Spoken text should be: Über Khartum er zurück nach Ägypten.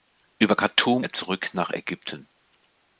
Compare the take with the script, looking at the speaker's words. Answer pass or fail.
pass